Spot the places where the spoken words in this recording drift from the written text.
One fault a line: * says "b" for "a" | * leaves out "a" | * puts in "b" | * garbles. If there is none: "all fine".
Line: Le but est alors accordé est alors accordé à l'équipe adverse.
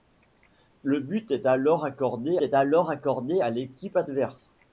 all fine